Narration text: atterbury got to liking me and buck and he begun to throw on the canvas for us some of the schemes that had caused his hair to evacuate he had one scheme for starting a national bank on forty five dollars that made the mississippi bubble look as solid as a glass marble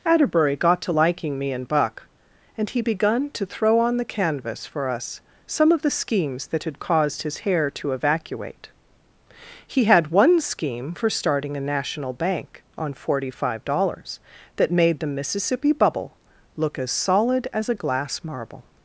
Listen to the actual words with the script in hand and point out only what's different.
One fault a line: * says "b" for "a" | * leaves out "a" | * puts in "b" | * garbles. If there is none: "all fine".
all fine